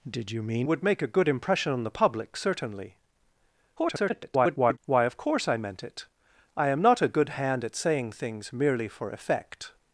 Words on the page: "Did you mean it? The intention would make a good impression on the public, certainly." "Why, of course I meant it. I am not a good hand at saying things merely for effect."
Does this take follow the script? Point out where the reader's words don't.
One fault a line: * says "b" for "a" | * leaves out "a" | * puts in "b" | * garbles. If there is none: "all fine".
* leaves out "it The intention"
* garbles